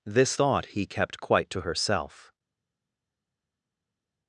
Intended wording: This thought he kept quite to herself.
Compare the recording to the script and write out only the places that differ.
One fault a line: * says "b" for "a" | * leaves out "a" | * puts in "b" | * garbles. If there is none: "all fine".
all fine